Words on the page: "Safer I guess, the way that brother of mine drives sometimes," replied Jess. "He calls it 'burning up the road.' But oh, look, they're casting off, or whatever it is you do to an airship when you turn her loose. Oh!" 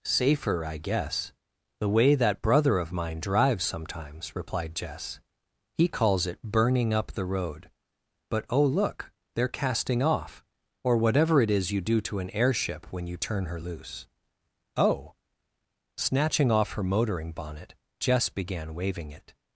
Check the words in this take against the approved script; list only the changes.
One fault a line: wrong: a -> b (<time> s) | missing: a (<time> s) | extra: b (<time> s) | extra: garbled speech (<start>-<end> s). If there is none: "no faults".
extra: Snatching off her motoring bonnet Jess began waving it (15.9 s)